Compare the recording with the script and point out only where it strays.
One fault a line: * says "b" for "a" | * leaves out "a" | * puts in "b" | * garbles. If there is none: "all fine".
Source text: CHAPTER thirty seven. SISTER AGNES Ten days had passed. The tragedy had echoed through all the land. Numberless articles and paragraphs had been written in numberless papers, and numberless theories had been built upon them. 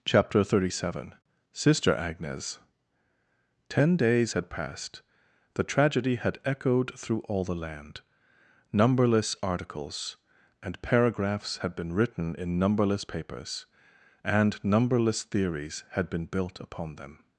all fine